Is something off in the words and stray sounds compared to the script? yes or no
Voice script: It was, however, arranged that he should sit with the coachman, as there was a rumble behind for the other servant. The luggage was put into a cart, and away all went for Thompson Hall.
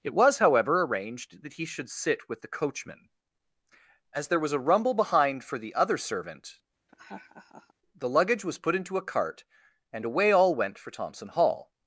yes